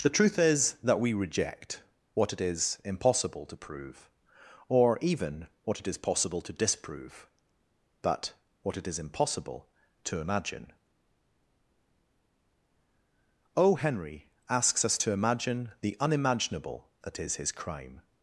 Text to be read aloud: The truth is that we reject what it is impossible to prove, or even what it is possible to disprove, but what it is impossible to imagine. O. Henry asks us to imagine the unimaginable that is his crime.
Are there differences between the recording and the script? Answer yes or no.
no